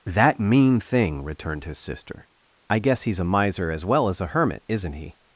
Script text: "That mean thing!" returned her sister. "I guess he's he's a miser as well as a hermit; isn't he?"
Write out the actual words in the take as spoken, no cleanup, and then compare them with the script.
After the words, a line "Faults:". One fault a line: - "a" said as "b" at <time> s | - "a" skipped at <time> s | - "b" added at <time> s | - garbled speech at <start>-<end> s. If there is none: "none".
"That mean thing!" returned his sister. "I guess he's a miser as well as a hermit; isn't he?"
Faults:
- "her" said as "his" at 1.6 s
- "he's" skipped at 3.2 s